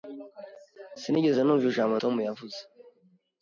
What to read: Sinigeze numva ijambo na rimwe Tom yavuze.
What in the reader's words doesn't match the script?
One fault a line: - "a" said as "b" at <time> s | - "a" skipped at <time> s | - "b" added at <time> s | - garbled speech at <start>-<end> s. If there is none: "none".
- "na rimwe" skipped at 1.9 s